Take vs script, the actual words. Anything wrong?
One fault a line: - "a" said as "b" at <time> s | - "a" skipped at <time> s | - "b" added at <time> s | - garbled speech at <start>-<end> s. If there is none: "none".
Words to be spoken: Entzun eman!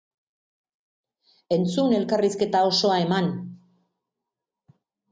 - "elkarrizketa osoa" added at 2.0 s